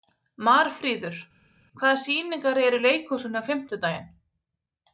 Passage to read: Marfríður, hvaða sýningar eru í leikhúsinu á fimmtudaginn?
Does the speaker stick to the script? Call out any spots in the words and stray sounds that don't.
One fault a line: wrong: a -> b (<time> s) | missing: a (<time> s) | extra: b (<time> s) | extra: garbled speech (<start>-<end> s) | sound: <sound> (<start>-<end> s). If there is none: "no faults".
no faults